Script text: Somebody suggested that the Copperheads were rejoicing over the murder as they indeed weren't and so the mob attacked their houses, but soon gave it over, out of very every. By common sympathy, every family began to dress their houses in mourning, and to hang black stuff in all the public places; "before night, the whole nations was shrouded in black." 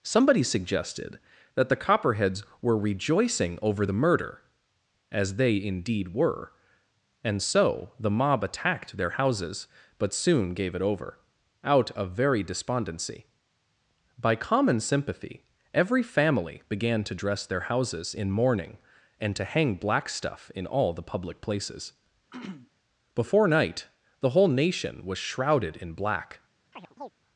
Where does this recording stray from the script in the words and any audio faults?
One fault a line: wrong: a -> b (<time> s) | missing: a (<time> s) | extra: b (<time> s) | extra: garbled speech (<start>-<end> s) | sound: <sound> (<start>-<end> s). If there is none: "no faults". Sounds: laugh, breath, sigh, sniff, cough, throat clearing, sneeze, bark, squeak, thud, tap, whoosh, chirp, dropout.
wrong: weren't -> were (6.1 s)
wrong: every -> despondency (12.4 s)
sound: throat clearing (22.3-22.7 s)
wrong: nations -> nation (24.5 s)
sound: chirp (26.7-27.1 s)